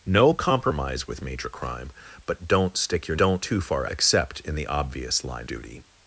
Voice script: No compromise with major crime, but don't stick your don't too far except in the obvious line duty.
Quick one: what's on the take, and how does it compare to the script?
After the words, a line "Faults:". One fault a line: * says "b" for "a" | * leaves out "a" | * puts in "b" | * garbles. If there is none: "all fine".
No compromise with major crime, but don't stick your don't too far except in the obvious line duty.
Faults:
all fine